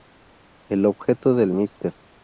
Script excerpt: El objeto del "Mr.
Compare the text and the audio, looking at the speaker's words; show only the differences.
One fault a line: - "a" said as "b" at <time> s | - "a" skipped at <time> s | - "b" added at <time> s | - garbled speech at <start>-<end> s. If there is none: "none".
none